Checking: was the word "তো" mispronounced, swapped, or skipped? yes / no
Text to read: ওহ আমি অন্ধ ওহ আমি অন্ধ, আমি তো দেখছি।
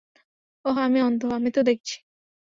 no